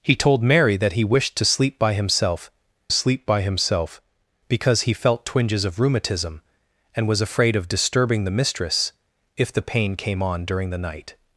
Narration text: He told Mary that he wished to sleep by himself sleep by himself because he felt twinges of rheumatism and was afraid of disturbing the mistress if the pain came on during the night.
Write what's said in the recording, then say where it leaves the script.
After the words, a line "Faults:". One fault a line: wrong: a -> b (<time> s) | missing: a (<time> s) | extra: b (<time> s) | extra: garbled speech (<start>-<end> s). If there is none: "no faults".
He told Mary that he wished to sleep by himself sleep by himself because he felt twinges of rheumatism and was afraid of disturbing the mistress if the pain came on during the night.
Faults:
no faults